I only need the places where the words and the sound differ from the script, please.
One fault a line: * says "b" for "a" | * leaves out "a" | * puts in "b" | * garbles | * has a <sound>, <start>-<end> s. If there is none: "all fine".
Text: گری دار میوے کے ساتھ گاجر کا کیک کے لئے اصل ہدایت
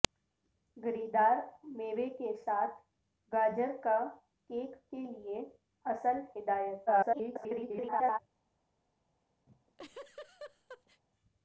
* garbles
* has a laugh, 9.5-11.0 s